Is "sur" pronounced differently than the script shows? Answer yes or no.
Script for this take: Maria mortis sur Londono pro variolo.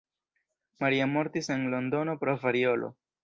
yes